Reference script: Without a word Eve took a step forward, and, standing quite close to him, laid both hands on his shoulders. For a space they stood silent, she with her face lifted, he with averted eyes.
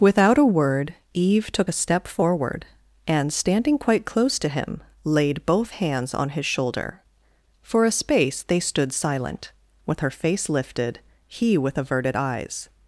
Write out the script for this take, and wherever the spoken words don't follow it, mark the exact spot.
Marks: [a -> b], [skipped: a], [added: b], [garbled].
Without a word Eve took a step forward, and, standing quite close to him, laid both hands on his [shoulders. -> shoulder] For a space they stood silent, [skipped: she] with her face lifted, he with averted eyes.